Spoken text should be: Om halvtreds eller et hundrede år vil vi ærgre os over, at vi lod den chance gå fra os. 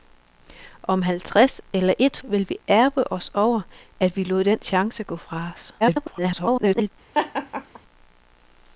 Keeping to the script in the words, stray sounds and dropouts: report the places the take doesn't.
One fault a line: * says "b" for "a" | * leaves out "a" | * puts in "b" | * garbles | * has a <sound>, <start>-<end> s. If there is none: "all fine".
* leaves out "hundrede år"
* garbles
* has a laugh, 7.1-7.8 s